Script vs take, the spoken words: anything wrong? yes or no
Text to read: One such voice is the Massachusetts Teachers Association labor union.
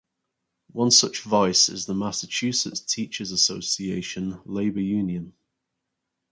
no